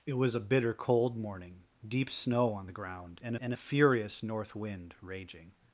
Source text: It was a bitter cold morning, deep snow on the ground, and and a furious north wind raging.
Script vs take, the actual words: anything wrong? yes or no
no